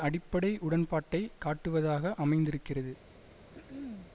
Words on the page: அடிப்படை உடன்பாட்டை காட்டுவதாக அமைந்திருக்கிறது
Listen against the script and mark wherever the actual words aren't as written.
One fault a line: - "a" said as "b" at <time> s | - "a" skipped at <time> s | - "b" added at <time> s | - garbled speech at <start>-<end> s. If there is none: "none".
none